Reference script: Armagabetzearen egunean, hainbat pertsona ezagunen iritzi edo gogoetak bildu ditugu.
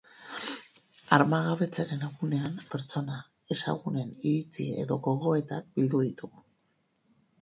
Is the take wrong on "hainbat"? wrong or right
wrong